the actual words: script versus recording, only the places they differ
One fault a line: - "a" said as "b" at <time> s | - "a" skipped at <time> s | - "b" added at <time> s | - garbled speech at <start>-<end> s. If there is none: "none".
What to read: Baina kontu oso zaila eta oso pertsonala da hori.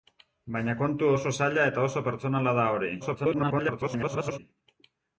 - garbled speech at 3.0-4.4 s